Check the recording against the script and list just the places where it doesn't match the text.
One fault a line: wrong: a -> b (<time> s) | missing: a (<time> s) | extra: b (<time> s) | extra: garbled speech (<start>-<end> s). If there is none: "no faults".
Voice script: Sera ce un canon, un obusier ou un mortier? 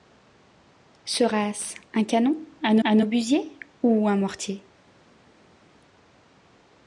extra: un (2.8 s)